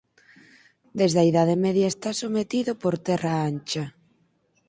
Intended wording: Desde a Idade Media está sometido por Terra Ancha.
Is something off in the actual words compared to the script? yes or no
no